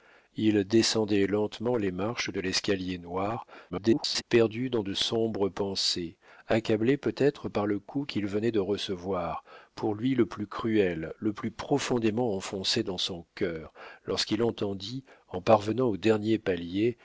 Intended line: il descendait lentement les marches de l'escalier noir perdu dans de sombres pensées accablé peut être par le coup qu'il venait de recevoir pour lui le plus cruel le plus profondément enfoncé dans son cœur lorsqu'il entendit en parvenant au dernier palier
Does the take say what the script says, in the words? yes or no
no